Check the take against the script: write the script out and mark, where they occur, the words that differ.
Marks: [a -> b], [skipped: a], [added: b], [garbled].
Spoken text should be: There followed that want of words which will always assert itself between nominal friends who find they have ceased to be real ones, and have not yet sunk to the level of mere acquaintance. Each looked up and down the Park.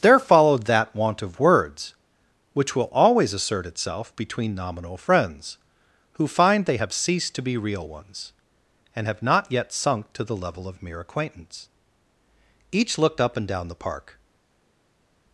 There followed that want of words which will always assert itself between nominal friends who find they have ceased to be real ones, and have not yet sunk to the level of mere acquaintance. Each looked up and down the Park.